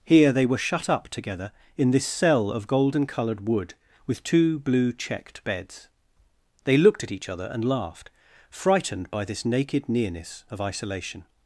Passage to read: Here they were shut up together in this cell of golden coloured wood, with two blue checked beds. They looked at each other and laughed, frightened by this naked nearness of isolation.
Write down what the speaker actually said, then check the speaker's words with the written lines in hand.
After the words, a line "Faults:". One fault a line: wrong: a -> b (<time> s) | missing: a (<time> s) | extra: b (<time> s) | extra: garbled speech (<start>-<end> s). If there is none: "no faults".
Here they were shut up together in this cell of golden coloured wood, with two blue checked beds. They looked at each other and laughed, frightened by this naked nearness of isolation.
Faults:
no faults